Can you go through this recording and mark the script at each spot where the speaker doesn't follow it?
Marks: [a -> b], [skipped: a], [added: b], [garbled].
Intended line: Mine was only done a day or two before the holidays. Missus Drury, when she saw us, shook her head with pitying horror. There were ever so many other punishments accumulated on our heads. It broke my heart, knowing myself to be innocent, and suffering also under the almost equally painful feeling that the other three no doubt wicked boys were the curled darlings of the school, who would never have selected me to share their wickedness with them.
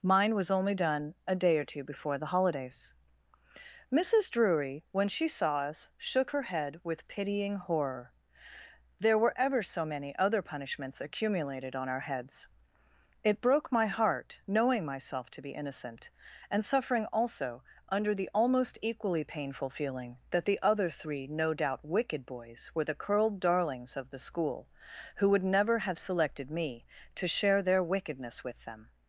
Mine was only done a day or two before the holidays. Missus Drury, when she saw us, shook her head with pitying horror. There were ever so many other punishments accumulated on our heads. It broke my heart, knowing myself to be innocent, and suffering also under the almost equally painful feeling that the other three no doubt wicked boys were the curled darlings of the school, who would never have selected me to share their wickedness with them.